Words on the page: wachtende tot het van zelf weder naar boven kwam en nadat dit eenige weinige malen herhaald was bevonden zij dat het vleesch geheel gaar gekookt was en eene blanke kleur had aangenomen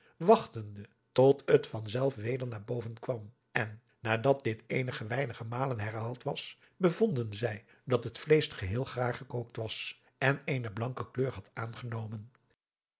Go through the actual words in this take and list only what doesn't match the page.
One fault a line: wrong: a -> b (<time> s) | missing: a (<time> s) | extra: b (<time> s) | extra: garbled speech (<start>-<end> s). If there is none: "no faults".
no faults